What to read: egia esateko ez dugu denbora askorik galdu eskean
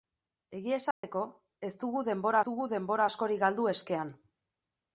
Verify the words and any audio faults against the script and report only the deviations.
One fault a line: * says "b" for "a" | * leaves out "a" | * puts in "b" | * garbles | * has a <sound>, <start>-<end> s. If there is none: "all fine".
* has a dropout, 0.9-1.0 s
* puts in "dugu denbora"